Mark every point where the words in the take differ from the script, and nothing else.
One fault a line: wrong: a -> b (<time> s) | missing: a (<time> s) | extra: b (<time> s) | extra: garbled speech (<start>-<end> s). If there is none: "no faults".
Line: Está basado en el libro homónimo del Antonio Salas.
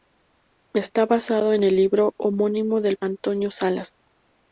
no faults